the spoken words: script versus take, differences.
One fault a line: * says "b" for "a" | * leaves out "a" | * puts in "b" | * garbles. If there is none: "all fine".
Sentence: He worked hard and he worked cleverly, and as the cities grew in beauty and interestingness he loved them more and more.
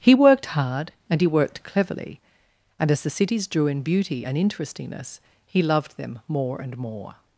* says "drew" for "grew"